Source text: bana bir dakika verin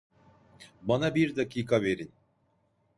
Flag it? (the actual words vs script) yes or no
no